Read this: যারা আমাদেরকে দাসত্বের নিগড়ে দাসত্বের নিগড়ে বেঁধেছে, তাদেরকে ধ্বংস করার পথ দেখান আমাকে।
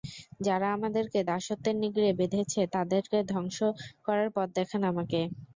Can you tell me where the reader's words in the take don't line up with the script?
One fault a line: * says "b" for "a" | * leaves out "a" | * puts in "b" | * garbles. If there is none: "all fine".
* leaves out "দাসত্বের নিগড়ে"